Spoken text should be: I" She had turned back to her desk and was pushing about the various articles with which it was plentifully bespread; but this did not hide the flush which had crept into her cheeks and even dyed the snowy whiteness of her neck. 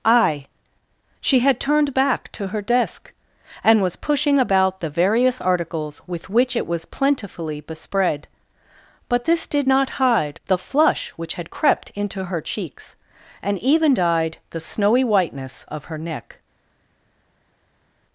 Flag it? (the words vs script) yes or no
no